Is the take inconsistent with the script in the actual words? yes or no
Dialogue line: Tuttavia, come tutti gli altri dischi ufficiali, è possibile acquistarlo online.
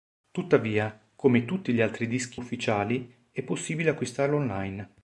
no